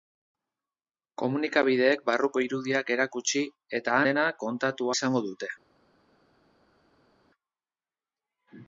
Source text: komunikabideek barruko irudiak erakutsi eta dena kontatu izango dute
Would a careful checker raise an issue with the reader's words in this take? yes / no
no